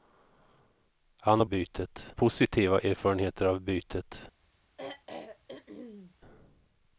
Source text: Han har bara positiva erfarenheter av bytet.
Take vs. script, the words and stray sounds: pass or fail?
fail